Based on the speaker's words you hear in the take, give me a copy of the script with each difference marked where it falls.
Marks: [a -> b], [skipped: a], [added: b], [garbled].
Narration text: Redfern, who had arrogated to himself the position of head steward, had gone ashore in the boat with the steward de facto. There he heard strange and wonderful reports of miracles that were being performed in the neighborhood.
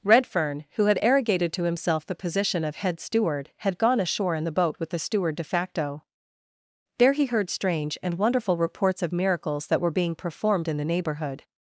Redfern, who had arrogated to himself the position of head steward, had gone ashore in the boat with the steward de facto. There he heard strange and wonderful reports of miracles that were being performed in the neighborhood.